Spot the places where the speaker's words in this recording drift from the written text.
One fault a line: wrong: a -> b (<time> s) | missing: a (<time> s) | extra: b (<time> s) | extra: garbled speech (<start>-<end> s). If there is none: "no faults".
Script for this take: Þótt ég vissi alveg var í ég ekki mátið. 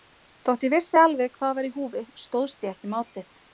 extra: hvað (1.4 s)
extra: húfi stóðst (1.8 s)